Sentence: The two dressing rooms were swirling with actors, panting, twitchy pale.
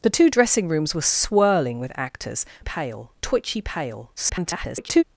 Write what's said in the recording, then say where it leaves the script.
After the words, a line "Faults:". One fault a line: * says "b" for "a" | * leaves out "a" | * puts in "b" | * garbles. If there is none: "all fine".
The two dressing rooms were swirling with actors, pale, twitchy pale. [garbled]
Faults:
* says "pale" for "panting"
* garbles